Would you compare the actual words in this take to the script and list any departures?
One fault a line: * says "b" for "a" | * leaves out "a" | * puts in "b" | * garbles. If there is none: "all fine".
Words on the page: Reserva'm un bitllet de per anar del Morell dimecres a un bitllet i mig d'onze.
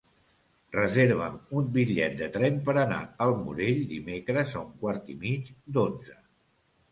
* puts in "tren"
* says "al" for "del"
* says "quart" for "bitllet"